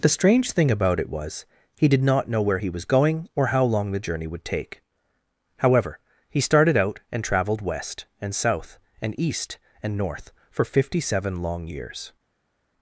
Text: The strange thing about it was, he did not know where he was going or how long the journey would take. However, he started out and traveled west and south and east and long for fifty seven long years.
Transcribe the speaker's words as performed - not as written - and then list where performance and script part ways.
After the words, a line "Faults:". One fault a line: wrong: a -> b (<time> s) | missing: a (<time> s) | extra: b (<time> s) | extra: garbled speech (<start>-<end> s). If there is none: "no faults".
The strange thing about it was, he did not know where he was going or how long the journey would take. However, he started out and traveled west and south and east and north for fifty seven long years.
Faults:
wrong: long -> north (10.0 s)